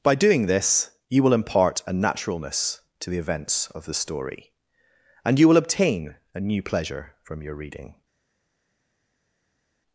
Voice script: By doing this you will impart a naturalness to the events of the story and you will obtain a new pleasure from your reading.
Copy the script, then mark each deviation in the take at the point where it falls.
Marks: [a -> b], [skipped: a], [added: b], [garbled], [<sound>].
By doing this you will impart a naturalness to the events of the story and you will obtain a new pleasure from your reading.